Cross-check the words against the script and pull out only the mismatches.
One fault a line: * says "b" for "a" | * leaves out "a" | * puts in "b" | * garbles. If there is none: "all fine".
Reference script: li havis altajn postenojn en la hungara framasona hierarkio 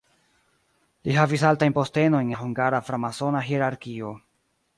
* leaves out "en"